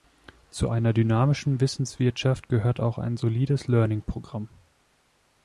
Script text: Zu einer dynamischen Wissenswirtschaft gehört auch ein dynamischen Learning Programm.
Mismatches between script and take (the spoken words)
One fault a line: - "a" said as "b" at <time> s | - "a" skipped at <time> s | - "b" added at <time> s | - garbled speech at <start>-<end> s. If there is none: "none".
- "dynamischen" said as "solides" at 3.2 s